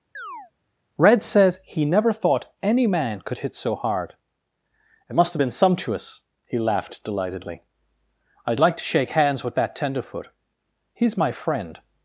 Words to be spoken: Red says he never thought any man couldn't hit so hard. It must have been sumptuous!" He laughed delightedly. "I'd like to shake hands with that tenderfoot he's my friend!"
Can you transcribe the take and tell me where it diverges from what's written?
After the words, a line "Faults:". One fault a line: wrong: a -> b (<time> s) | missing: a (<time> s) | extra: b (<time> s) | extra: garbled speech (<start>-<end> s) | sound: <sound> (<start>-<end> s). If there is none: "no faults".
Red says he never thought any man could hit so hard. It must have been sumptuous!" He laughed delightedly. "I'd like to shake hands with that tenderfoot he's my friend!"
Faults:
sound: chirp (0.1-0.5 s)
wrong: couldn't -> could (3.2 s)